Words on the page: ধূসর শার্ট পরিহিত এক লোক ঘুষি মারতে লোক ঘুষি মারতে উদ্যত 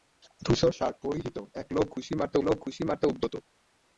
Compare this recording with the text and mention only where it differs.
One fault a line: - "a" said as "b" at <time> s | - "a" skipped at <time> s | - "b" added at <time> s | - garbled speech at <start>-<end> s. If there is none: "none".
none